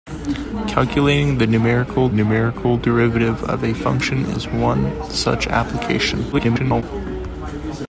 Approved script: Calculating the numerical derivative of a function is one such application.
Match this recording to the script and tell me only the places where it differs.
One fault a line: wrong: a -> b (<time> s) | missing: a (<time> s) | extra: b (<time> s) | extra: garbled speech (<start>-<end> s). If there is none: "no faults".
extra: numerical (2.1 s)
extra: garbled speech (6.3-6.8 s)